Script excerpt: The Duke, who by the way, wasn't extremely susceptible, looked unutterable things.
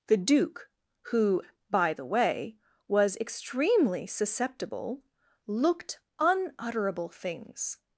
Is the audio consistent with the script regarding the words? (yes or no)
no